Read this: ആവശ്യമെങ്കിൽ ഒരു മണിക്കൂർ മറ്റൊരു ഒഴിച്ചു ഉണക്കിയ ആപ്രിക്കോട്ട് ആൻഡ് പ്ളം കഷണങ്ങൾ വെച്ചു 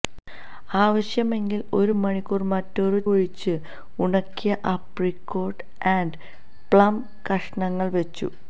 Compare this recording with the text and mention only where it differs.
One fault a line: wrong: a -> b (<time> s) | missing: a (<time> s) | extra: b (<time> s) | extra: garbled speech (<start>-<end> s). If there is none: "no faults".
no faults